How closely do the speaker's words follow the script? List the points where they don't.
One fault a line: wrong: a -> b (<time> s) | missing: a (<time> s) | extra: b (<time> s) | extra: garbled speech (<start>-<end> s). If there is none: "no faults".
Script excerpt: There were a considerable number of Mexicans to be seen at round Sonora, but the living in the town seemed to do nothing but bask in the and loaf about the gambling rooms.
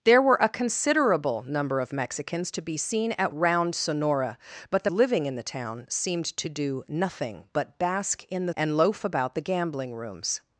no faults